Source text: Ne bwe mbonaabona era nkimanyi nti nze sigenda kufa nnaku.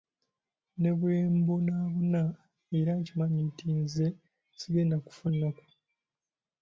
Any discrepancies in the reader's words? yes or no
no